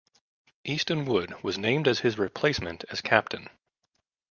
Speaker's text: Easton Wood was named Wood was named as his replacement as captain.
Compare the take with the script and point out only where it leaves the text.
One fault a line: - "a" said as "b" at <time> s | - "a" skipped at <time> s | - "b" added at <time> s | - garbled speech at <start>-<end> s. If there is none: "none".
- "Wood was named" skipped at 1.9 s